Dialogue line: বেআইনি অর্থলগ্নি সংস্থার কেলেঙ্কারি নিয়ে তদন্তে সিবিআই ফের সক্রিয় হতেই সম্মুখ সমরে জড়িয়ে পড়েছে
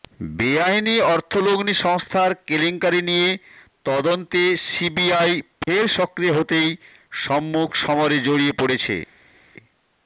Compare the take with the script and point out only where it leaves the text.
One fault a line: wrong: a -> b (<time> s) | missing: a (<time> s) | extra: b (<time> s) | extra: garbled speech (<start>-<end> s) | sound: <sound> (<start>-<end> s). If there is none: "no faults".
no faults